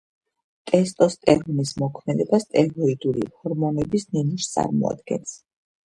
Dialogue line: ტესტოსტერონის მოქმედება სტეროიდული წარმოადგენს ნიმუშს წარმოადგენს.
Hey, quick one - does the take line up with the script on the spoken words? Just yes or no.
no